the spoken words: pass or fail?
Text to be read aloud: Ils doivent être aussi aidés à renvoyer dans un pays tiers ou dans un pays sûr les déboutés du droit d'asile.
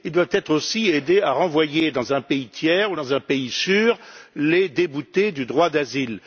pass